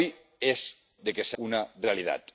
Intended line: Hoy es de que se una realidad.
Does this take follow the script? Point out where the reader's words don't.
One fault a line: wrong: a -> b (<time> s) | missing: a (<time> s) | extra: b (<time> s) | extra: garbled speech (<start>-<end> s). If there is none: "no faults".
no faults